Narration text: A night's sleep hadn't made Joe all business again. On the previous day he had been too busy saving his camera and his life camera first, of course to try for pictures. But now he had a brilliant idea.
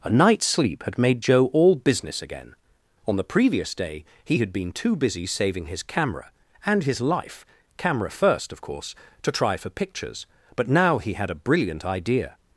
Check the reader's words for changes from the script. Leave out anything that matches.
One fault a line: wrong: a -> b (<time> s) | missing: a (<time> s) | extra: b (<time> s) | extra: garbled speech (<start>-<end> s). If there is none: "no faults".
wrong: hadn't -> had (0.8 s)